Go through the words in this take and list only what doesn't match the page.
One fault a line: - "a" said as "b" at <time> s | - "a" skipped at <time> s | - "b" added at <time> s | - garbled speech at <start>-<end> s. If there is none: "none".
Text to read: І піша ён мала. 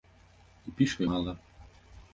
- "ён" skipped at 1.0 s